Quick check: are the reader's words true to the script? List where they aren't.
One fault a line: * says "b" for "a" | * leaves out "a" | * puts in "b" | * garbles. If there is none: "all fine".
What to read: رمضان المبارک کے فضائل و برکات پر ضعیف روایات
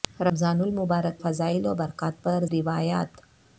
* leaves out "کے"
* leaves out "ضعیف"